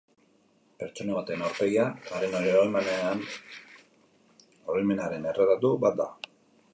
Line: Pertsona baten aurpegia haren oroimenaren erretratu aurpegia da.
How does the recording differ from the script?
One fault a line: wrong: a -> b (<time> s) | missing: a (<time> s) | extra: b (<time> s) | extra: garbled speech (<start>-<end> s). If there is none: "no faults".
wrong: aurpegia -> bat (5.9 s)